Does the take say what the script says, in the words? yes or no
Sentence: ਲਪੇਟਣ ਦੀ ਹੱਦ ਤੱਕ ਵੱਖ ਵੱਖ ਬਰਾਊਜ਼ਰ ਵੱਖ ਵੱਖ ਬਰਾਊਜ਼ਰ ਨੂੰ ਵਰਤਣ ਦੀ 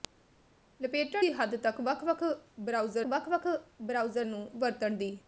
yes